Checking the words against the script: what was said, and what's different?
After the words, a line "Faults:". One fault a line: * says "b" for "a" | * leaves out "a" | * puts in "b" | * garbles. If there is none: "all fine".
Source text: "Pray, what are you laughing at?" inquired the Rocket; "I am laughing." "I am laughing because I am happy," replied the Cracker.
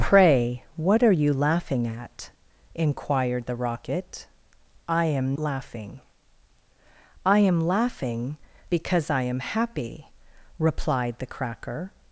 "Pray, what are you laughing at?" inquired the Rocket; "I am laughing." "I am laughing because I am happy," replied the Cracker.
Faults:
all fine